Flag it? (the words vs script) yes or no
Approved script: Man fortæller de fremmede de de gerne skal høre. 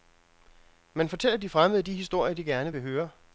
yes